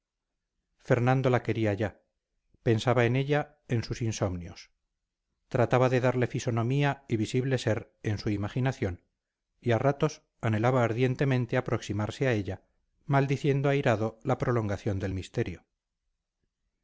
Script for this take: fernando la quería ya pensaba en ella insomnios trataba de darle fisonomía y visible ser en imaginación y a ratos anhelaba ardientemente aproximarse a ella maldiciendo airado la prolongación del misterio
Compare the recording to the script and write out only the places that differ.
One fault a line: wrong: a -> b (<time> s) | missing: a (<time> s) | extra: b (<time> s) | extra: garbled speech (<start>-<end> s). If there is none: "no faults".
extra: en sus (3.7 s)
extra: su (8.2 s)